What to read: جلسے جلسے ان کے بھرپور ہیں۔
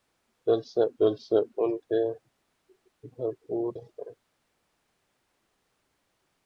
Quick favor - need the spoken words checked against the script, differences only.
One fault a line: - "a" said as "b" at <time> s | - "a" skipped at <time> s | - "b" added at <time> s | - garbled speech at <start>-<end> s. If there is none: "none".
none